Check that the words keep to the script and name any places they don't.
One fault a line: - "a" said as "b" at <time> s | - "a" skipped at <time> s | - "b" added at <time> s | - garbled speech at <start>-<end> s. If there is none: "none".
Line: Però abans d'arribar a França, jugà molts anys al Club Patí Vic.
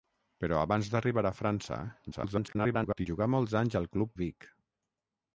- garbled speech at 2.1-3.1 s
- "Patí" skipped at 4.1 s